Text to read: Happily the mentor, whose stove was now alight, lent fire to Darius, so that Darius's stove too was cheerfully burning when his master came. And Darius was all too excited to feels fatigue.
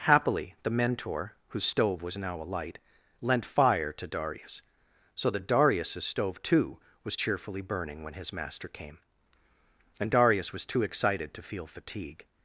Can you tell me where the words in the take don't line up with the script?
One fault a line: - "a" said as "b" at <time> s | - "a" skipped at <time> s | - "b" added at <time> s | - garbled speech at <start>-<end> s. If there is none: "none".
- "all" skipped at 10.7 s
- "feels" said as "feel" at 11.4 s